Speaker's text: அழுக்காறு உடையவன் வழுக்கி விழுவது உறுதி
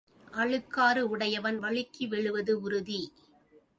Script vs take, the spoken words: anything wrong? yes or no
no